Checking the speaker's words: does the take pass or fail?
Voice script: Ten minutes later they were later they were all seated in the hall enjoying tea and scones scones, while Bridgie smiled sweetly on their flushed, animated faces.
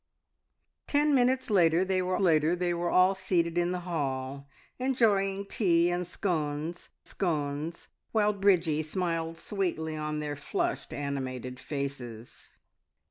pass